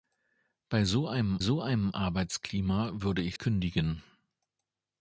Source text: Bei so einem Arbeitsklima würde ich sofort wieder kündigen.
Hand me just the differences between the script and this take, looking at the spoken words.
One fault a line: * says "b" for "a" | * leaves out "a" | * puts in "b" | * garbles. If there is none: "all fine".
* puts in "so einem"
* leaves out "sofort wieder"